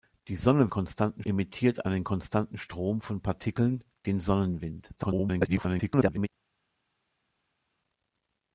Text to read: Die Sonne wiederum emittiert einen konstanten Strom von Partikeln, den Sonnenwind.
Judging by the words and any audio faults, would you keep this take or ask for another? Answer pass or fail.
fail